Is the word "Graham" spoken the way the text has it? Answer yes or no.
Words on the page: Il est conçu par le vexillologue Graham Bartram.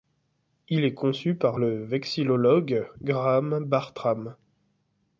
yes